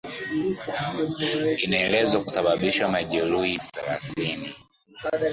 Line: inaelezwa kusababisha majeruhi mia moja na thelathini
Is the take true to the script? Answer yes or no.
no